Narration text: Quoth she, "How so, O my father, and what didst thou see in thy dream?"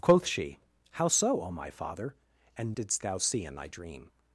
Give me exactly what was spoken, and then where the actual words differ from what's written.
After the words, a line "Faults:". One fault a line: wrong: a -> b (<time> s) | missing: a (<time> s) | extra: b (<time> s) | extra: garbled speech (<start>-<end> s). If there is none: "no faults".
Quoth she, "How so, O my father, and didst thou see in thy dream?"
Faults:
missing: what (2.8 s)